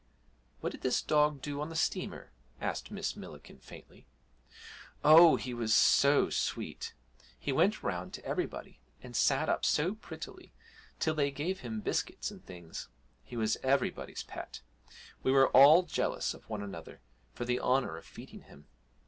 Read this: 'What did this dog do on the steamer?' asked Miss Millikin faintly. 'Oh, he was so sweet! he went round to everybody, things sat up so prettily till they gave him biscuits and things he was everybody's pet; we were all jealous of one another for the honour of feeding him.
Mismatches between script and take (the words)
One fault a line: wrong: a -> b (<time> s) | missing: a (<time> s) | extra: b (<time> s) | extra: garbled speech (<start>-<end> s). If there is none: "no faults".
wrong: things -> and (9.0 s)